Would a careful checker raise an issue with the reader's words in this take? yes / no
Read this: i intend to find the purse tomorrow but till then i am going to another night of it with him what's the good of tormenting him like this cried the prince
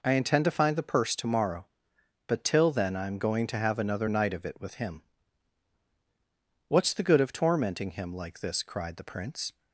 yes